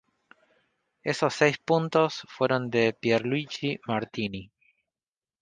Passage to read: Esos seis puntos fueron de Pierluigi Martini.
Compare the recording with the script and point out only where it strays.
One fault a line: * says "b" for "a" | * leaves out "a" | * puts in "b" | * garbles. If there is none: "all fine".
all fine